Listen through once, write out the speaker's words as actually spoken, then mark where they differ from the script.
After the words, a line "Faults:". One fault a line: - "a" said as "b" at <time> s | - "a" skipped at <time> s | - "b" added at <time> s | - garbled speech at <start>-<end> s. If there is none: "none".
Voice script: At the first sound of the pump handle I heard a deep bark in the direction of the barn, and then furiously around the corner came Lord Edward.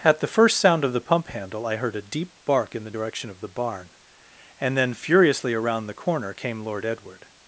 At the first sound of the pump handle I heard a deep bark in the direction of the barn, and then furiously around the corner came Lord Edward.
Faults:
none